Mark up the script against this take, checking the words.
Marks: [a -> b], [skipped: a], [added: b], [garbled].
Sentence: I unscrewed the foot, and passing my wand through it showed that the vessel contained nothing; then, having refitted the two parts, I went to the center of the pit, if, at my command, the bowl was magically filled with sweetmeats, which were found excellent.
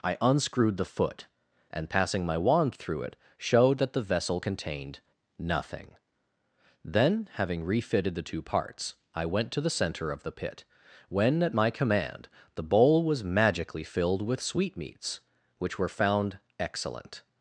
I unscrewed the foot, and passing my wand through it showed that the vessel contained nothing; then, having refitted the two parts, I went to the center of the pit, [if, -> when] at my command, the bowl was magically filled with sweetmeats, which were found excellent.